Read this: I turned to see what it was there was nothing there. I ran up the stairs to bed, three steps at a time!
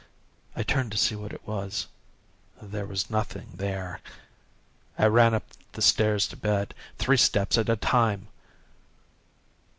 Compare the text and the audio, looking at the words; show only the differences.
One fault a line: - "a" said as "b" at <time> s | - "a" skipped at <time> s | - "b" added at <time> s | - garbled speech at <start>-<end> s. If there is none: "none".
none